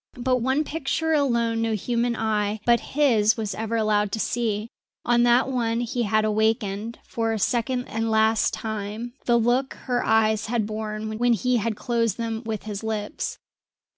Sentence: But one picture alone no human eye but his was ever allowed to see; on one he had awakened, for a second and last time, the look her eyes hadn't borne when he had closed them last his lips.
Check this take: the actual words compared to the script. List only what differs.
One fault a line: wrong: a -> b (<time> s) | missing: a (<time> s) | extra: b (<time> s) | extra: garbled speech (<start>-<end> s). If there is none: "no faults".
extra: that (5.2 s)
wrong: hadn't -> had (10.5 s)
wrong: last -> with (12.4 s)